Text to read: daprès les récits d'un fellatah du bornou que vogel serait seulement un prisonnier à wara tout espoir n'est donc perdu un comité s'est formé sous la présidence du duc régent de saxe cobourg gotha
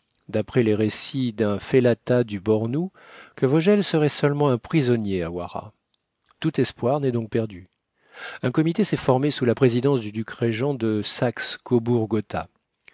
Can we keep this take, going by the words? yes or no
yes